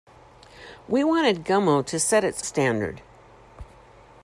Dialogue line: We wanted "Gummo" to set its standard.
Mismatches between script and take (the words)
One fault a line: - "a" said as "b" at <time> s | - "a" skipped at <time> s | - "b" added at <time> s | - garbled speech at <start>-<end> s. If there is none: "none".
none